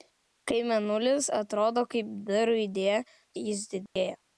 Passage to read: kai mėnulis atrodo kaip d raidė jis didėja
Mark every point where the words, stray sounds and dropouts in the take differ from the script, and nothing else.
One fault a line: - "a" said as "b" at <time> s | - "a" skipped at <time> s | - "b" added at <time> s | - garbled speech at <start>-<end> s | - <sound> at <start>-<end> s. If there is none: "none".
- dropout at 3.9-4.0 s